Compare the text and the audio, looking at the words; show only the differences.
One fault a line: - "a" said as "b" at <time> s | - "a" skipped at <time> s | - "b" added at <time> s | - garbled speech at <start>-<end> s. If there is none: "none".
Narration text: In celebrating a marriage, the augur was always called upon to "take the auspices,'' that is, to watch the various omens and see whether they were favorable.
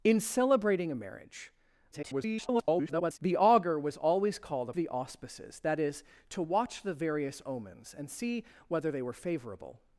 - garbled speech at 1.9-3.2 s
- "upon to take" skipped at 4.7 s